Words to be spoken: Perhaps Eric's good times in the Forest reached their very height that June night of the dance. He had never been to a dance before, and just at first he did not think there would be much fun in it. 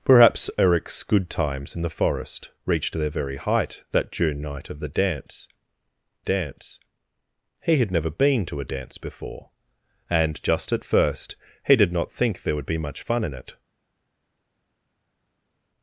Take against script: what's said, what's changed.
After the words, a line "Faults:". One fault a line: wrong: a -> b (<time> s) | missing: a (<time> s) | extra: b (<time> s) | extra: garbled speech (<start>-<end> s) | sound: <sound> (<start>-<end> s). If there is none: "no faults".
Perhaps Eric's good times in the Forest reached their very height that June night of the dance dance. He had never been to a dance before, and just at first he did not think there would be much fun in it.
Faults:
extra: dance (6.2 s)